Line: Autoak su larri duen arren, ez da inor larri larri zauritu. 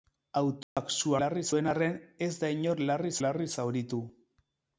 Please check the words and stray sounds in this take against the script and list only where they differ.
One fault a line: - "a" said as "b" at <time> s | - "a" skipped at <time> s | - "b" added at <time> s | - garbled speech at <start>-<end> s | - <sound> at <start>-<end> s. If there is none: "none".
- dropout at 0.6-0.8 s